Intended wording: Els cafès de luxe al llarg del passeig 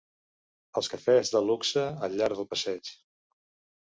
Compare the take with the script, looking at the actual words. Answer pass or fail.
pass